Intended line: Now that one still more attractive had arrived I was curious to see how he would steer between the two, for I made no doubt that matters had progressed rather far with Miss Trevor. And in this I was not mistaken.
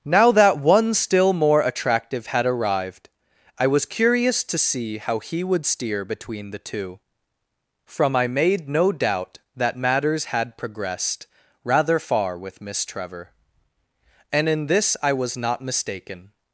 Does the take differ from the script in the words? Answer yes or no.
yes